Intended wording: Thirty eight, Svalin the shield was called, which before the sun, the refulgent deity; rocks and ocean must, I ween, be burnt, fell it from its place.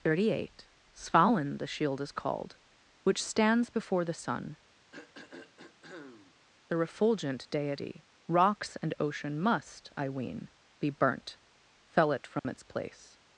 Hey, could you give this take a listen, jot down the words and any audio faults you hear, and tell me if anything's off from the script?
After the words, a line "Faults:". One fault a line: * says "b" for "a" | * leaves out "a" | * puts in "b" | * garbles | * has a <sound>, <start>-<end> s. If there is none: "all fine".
Thirty eight, Svalin the shield is called, which stands before the sun, the refulgent deity; rocks and ocean must, I ween, be burnt, fell it from its place.
Faults:
* says "is" for "was"
* puts in "stands"
* has a throat clearing, 4.9-6.3 s
* has a dropout, 12.4-12.4 s